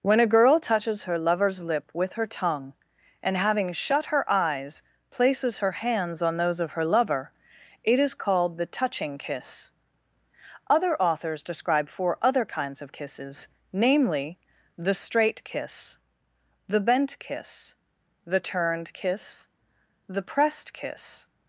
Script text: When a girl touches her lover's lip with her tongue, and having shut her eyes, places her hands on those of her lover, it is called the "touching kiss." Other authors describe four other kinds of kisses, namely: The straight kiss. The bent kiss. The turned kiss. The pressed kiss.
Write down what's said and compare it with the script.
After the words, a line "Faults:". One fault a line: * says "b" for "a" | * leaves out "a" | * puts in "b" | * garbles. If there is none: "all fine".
When a girl touches her lover's lip with her tongue, and having shut her eyes, places her hands on those of her lover, it is called the "touching kiss." Other authors describe four other kinds of kisses, namely: The straight kiss. The bent kiss. The turned kiss. The pressed kiss.
Faults:
all fine